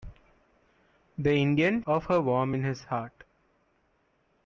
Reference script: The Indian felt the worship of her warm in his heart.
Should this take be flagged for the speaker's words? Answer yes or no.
yes